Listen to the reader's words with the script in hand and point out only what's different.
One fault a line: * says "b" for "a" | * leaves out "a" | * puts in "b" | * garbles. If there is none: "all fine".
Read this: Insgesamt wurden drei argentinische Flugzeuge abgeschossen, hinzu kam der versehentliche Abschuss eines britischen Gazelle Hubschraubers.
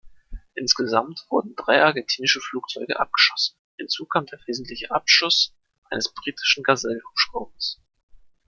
all fine